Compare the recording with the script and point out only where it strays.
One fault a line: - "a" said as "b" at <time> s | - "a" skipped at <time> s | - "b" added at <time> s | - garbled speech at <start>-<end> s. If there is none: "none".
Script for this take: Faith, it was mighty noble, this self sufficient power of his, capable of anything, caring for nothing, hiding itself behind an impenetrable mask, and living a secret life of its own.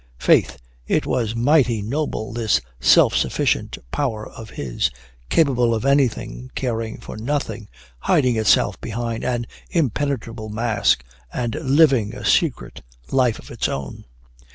none